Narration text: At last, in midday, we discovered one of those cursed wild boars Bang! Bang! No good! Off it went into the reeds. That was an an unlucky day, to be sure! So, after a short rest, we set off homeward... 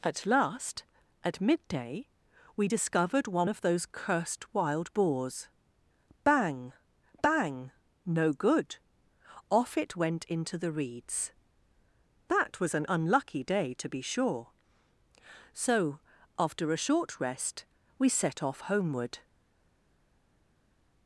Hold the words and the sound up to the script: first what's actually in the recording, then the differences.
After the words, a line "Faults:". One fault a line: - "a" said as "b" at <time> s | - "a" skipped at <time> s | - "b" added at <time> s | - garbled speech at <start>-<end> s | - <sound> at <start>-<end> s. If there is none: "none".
At last, at midday, we discovered one of those cursed wild boars Bang! Bang! No good! Off it went into the reeds. That was an unlucky day, to be sure! So, after a short rest, we set off homeward...
Faults:
- "in" said as "at" at 1.2 s
- "an" skipped at 12.9 s